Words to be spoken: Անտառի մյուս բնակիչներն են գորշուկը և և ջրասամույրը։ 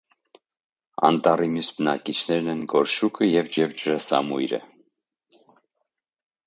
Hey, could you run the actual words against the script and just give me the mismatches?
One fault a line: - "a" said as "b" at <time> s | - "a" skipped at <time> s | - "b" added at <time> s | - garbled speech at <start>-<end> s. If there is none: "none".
none